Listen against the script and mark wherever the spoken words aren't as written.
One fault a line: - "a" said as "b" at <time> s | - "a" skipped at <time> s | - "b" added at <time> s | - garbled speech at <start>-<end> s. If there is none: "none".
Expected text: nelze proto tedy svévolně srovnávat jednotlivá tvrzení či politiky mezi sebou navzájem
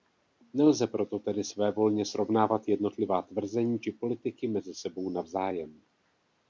none